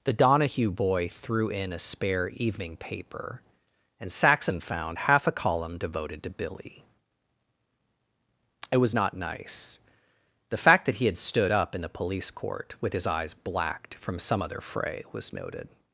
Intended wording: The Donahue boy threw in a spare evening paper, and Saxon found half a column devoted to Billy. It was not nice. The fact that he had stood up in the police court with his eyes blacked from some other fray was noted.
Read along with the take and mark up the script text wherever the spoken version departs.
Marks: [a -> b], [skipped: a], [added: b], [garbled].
The Donahue boy threw in a spare evening paper, and Saxon found half a column devoted to Billy. It was not nice. The fact that he had stood up in the police court with his eyes blacked from some other fray was noted.